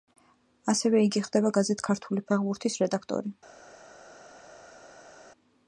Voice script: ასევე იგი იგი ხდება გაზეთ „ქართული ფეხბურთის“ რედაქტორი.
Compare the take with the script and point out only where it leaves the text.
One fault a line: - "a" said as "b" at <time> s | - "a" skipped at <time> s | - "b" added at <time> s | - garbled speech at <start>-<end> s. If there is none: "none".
- "იგი" skipped at 1.2 s